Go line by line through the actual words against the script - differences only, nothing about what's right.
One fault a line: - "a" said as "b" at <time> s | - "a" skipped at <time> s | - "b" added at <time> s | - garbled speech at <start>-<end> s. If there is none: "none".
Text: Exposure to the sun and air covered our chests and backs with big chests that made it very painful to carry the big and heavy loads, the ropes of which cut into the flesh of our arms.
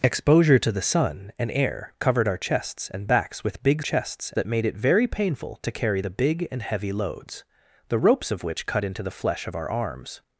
none